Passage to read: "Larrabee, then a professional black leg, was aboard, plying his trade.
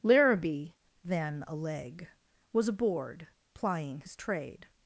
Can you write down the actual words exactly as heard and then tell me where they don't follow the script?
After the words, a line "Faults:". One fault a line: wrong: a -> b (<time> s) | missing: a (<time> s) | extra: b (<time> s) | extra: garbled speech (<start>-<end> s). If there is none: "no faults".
"Larrabee, then a leg, was aboard, plying his trade.
Faults:
missing: professional black (1.5 s)